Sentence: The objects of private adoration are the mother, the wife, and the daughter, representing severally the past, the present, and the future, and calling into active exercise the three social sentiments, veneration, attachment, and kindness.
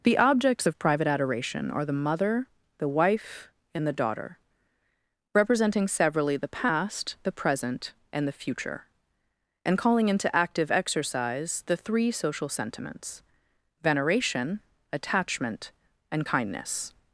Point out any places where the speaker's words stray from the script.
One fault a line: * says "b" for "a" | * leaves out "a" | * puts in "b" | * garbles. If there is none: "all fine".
all fine